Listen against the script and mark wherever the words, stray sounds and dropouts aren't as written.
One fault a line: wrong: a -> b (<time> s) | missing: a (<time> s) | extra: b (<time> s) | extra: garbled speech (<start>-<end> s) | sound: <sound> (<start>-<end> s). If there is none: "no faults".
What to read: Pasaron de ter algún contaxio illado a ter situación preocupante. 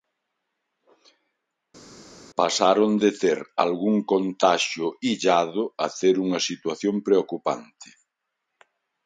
extra: unha (6.3 s)